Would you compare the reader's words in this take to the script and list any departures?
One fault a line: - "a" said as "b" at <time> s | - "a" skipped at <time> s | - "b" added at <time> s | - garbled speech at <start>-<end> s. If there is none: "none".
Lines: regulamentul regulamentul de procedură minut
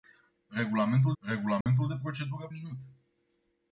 none